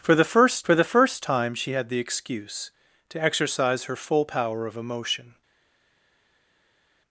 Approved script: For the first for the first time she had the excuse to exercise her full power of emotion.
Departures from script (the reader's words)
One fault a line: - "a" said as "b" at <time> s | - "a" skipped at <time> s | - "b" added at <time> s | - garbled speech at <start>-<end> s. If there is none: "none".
none